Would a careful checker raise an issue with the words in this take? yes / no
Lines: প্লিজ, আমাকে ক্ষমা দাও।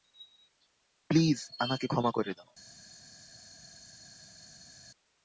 yes